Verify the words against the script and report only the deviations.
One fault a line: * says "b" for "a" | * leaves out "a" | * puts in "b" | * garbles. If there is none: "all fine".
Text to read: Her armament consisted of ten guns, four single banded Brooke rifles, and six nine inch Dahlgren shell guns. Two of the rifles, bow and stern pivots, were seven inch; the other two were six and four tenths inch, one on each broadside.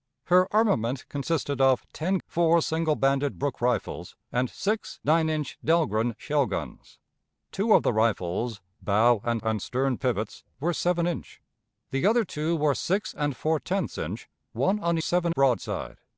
* leaves out "guns"
* puts in "and"
* says "seven" for "each"